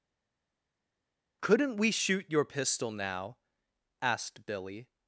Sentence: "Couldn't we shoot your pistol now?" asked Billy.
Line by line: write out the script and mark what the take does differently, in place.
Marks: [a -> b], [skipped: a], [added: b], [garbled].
"Couldn't we shoot your pistol now?" asked Billy.